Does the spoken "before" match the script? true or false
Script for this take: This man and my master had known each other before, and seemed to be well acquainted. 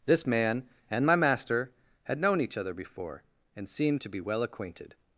true